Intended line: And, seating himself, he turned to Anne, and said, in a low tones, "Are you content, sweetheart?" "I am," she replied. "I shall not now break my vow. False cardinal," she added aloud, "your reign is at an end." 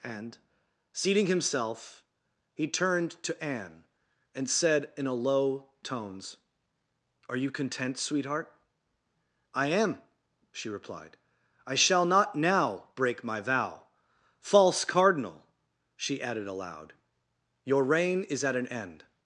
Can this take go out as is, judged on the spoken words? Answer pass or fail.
pass